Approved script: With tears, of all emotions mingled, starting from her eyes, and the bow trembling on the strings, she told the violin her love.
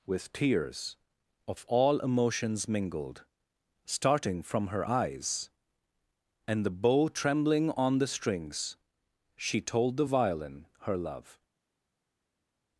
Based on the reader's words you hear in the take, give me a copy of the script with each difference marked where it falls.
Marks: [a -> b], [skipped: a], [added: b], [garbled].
With tears, of all emotions mingled, starting from her eyes, and the bow trembling on the strings, she told the violin her love.